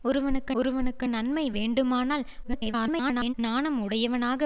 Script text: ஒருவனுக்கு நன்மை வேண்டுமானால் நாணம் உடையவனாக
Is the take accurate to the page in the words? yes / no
no